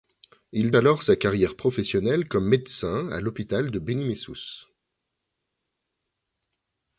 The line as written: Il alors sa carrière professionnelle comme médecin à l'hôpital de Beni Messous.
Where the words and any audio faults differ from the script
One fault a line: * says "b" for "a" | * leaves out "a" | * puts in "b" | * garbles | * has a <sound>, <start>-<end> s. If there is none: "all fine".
all fine